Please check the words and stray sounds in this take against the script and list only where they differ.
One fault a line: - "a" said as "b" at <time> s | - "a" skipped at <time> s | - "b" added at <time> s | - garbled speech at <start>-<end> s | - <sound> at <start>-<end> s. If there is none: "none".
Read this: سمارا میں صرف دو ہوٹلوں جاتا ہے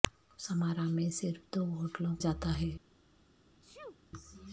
- sneeze at 3.6-4.0 s